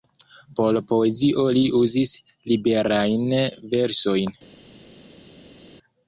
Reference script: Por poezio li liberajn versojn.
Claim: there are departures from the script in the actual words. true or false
true